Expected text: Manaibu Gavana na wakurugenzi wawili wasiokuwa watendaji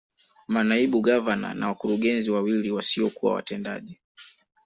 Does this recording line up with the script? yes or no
yes